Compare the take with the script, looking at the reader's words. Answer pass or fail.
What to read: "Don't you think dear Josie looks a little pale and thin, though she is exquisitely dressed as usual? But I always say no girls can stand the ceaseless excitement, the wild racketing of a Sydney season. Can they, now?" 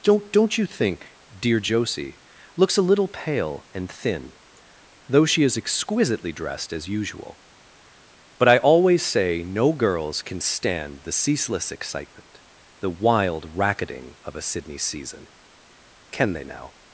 fail